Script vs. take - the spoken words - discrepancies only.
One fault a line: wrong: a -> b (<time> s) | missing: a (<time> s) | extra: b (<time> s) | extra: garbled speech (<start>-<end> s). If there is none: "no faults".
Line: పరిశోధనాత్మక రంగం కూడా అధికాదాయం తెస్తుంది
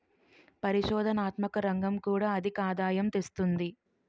no faults